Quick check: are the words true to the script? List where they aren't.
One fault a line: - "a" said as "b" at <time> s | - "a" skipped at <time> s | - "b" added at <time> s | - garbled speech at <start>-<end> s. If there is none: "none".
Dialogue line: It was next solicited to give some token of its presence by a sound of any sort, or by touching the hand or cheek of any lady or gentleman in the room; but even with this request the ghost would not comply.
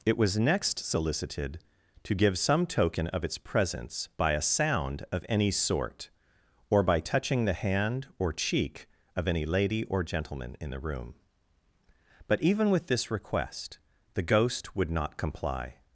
none